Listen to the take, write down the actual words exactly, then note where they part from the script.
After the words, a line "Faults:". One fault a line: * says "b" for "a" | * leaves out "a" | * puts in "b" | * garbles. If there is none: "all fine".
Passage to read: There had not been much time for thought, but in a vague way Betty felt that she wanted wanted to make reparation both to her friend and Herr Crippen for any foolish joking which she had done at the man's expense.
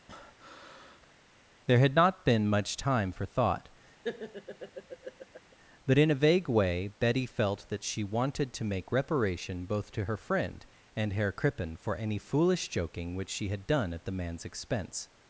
There had not been much time for thought, but in a vague way Betty felt that she wanted to make reparation both to her friend and Herr Crippen for any foolish joking which she had done at the man's expense.
Faults:
* leaves out "wanted"